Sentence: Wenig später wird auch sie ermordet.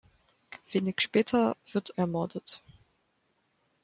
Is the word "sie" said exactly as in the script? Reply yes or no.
no